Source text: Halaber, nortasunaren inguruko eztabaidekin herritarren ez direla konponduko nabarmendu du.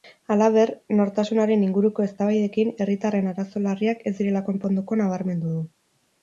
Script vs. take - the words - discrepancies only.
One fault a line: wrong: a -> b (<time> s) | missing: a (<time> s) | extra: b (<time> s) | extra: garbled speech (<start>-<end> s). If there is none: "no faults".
extra: arazo larriak (3.3 s)